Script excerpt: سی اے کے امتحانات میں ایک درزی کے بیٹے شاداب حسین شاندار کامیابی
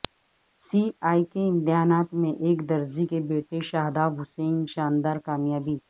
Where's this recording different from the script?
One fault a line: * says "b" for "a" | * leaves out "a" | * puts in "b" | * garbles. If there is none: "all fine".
all fine